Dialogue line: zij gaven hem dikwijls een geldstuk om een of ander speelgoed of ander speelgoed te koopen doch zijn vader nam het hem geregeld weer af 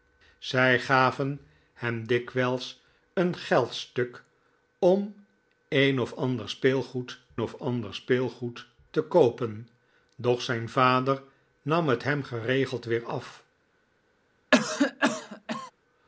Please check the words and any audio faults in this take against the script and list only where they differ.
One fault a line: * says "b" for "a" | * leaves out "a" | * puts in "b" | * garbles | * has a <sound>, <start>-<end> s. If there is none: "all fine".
* has a cough, 14.5-15.7 s